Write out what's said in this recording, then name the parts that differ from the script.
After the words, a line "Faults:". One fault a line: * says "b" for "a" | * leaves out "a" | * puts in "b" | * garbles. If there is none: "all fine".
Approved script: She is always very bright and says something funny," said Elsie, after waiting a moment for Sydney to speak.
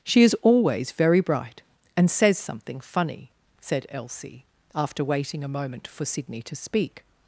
She is always very bright and says something funny," said Elsie, after waiting a moment for Sydney to speak.
Faults:
all fine